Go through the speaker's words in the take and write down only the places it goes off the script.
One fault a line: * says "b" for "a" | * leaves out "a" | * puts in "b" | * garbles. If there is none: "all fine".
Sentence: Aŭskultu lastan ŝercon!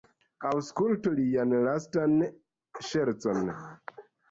* puts in "lian"